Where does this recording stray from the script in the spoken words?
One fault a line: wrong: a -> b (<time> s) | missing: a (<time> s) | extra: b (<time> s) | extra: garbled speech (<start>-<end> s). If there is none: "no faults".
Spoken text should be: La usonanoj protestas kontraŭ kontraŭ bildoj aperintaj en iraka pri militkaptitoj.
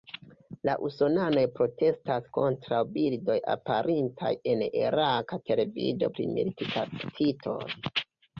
missing: kontraŭ (2.8 s)
extra: televido (5.5 s)